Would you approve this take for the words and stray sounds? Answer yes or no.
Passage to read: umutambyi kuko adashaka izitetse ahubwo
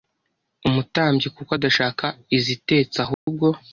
no